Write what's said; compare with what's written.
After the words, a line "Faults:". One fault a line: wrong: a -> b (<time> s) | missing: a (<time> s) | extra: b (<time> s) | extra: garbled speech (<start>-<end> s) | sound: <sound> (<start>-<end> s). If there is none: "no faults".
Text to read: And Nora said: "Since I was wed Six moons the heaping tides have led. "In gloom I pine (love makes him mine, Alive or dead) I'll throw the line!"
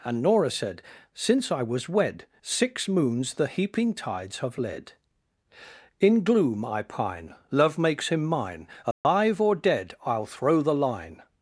And Nora said: "Since I was wed Six moons the heaping tides have led. "In gloom I pine (love makes him mine, Alive or dead) I'll throw the line!"
Faults:
sound: dropout (8.9-9.0 s)